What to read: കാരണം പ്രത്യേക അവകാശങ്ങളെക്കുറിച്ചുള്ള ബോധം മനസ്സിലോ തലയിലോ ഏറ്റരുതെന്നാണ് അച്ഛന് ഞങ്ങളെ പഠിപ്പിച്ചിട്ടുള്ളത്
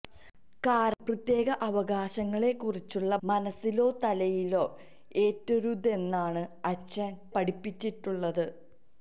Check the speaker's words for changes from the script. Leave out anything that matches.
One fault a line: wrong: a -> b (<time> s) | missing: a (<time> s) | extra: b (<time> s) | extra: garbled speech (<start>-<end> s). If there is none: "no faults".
missing: ബോധം (3.2 s)
missing: ഞങ്ങളെ (7.1 s)